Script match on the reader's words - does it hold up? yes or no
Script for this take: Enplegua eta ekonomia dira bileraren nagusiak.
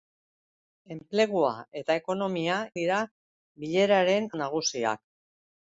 yes